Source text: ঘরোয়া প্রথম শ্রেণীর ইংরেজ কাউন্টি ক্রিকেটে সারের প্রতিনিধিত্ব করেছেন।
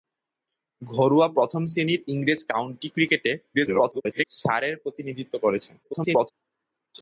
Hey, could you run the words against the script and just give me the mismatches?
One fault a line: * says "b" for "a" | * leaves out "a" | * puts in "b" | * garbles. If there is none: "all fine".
* garbles
* garbles